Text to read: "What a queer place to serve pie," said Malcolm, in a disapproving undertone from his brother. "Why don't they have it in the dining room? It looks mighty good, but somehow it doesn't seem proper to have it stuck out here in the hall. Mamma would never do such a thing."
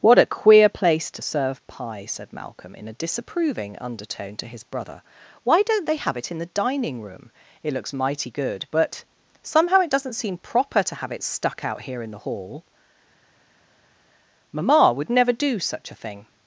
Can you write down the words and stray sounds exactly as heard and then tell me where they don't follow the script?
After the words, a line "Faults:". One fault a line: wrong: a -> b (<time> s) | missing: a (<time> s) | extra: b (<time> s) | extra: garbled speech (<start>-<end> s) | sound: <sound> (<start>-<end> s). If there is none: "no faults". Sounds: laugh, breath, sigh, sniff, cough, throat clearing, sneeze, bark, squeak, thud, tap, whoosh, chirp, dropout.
"What a queer place to serve pie," said Malcolm, in a disapproving undertone to his brother. "Why don't they have it in the dining room? It looks mighty good, but somehow it doesn't seem proper to have it stuck out here in the hall. Mamma would never do such a thing."
Faults:
wrong: from -> to (4.4 s)